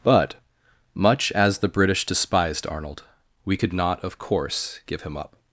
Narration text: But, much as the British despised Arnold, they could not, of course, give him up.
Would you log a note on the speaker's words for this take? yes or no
yes